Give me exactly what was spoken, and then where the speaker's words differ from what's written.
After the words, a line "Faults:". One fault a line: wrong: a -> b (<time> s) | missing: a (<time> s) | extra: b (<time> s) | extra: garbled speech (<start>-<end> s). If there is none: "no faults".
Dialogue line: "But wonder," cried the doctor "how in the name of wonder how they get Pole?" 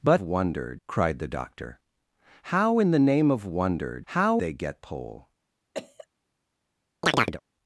"But wonder," cried the doctor "how in the name of wonder how they get Pole?"
Faults:
no faults